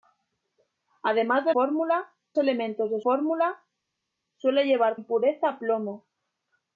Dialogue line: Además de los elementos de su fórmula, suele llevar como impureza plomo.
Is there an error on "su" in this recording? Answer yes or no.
yes